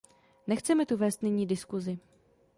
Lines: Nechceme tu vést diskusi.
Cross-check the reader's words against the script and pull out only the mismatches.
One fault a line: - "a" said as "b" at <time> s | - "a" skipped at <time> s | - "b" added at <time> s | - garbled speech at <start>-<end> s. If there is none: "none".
- "nyní" added at 1.2 s